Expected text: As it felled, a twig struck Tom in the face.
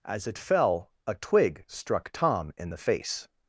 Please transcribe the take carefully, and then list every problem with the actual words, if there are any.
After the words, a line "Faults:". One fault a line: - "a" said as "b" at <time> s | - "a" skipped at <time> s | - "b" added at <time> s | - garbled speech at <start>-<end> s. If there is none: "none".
As it fell, a twig struck Tom in the face.
Faults:
- "felled" said as "fell" at 0.4 s